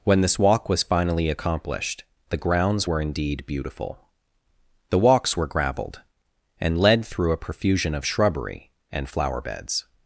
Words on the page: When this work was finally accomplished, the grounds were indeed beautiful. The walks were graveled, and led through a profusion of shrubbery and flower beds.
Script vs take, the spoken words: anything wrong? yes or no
yes